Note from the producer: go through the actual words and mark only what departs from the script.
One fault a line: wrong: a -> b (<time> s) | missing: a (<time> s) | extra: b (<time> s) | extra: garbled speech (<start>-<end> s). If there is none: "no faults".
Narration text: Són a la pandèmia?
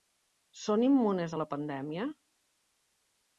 extra: immunes (0.9 s)